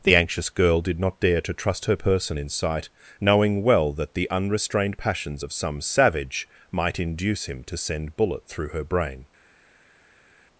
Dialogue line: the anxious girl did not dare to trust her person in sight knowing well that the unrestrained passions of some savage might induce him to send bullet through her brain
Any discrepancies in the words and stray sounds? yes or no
no